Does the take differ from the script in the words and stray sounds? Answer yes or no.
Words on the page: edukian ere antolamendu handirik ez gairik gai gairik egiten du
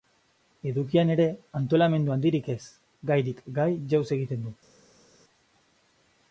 yes